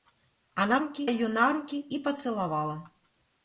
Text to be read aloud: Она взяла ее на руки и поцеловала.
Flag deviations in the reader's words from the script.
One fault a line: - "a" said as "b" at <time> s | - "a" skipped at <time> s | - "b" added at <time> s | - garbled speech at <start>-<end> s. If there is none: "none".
- "взяла" said as "руки" at 0.8 s